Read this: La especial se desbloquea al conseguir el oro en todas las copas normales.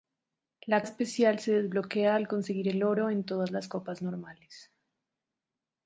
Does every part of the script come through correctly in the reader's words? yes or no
yes